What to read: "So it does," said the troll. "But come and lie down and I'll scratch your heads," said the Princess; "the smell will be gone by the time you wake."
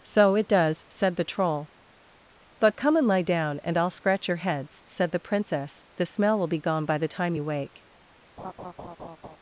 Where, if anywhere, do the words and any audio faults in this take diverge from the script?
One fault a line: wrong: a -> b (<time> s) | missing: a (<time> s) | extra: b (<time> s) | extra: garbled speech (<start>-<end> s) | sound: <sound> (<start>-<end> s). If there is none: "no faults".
sound: laugh (8.4-9.4 s)